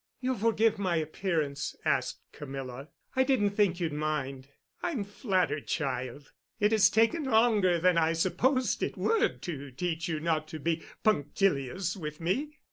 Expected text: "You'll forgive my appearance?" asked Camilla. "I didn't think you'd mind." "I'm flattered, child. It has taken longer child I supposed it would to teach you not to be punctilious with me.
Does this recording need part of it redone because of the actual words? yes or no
yes